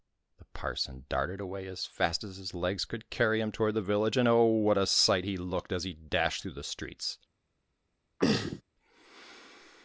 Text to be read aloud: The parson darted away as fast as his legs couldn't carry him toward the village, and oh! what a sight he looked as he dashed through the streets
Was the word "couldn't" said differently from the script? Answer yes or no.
yes